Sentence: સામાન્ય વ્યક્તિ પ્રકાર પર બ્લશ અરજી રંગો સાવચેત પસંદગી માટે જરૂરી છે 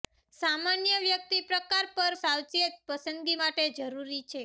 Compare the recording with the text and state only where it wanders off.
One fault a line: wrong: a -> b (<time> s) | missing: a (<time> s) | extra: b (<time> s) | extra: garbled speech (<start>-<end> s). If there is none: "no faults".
missing: બ્લશ અરજી રંગો (2.1 s)